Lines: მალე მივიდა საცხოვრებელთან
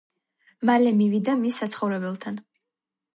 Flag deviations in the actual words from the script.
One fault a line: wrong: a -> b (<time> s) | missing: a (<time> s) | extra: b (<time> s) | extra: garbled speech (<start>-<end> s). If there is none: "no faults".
extra: მის (1.4 s)